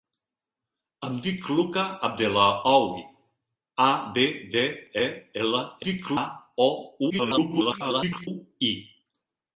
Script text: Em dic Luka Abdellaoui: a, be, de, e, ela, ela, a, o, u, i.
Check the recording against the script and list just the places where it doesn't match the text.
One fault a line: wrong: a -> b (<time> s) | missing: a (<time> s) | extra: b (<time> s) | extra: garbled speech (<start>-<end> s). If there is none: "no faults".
wrong: ela -> dic (5.9 s)
extra: garbled speech (7.1-8.3 s)